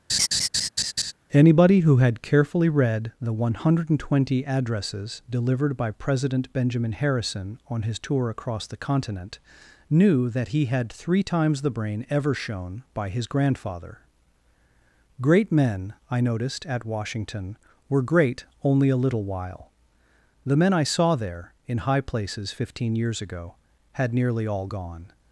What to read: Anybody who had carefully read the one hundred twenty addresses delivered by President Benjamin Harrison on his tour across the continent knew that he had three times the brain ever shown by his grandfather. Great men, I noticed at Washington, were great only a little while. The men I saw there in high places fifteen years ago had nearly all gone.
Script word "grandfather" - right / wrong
right